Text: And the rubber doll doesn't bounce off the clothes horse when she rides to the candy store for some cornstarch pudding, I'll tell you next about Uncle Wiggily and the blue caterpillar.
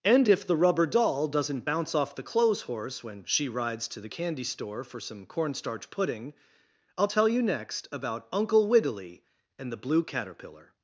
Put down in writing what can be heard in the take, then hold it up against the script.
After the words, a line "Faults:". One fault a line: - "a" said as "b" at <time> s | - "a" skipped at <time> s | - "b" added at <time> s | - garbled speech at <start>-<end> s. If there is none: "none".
And if the rubber doll doesn't bounce off the clothes horse when she rides to the candy store for some cornstarch pudding, I'll tell you next about Uncle Wiggily and the blue caterpillar.
Faults:
- "if" added at 0.3 s